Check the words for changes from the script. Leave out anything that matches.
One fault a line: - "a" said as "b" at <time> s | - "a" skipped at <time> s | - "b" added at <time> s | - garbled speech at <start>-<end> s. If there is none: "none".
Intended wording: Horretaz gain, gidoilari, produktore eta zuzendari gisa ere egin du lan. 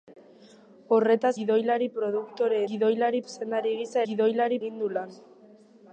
- "gain" skipped at 1.3 s
- "eta" said as "gidoilari" at 2.7 s
- "ere" said as "gidoilari" at 4.1 s